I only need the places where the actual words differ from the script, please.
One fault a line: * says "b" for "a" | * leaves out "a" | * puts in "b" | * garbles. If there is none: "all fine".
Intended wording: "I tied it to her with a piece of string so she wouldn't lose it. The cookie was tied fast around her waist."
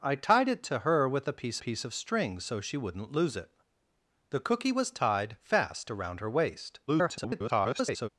* puts in "piece"
* garbles